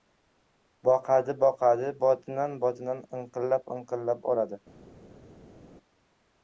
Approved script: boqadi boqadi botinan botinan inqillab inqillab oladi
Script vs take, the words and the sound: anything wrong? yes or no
no